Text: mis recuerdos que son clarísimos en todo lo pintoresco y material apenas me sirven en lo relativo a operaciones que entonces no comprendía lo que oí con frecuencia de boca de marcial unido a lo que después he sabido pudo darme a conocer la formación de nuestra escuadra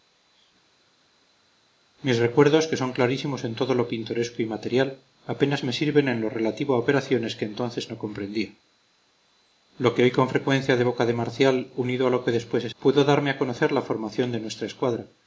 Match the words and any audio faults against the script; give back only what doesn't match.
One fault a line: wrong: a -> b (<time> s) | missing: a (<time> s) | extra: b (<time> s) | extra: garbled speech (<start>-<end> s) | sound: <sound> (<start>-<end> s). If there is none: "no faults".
missing: sabido (12.7 s)